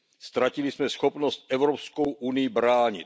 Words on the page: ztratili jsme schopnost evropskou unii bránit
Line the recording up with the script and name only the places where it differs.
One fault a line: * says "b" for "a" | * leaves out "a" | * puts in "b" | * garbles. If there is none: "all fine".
all fine